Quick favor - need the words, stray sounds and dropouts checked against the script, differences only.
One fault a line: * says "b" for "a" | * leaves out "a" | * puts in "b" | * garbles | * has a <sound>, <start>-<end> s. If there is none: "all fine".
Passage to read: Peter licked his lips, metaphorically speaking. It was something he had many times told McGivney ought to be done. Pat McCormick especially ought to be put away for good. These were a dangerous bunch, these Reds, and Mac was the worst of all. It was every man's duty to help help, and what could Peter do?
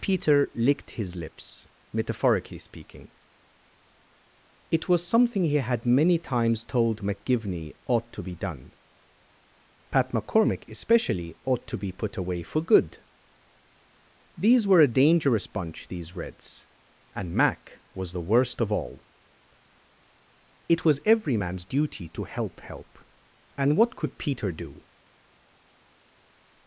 all fine